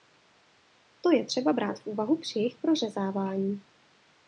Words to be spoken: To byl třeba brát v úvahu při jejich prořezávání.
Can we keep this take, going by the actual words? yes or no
no